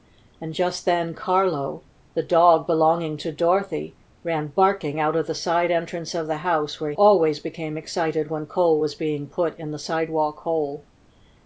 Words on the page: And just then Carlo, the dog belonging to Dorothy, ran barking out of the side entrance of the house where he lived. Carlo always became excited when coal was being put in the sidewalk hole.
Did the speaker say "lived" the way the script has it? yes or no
no